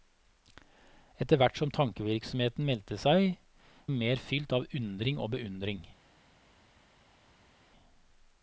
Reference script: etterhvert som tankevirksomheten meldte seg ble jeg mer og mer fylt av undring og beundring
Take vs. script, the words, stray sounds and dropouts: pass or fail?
fail